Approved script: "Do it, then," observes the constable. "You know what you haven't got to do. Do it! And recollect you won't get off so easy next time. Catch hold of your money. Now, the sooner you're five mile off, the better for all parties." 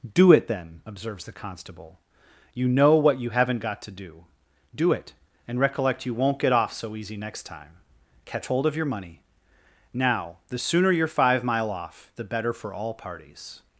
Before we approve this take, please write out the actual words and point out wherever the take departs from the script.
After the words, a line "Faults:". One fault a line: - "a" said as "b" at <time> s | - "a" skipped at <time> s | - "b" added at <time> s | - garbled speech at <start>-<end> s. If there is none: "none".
"Do it, then," observes the constable. "You know what you haven't got to do. Do it! And recollect you won't get off so easy next time. Catch hold of your money. Now, the sooner you're five mile off, the better for all parties."
Faults:
none